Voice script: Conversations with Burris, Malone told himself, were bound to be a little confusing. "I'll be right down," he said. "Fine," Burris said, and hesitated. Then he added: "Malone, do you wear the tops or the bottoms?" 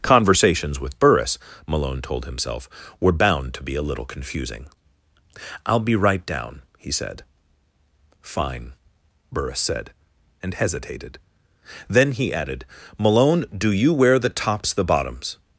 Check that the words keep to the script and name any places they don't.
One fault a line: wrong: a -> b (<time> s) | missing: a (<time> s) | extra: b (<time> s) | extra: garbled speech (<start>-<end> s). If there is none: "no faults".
missing: or (14.7 s)